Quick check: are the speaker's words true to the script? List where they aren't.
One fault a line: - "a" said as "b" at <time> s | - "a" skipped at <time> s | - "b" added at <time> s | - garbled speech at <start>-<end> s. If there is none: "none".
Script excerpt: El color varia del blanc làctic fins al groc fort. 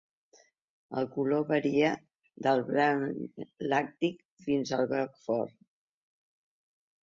none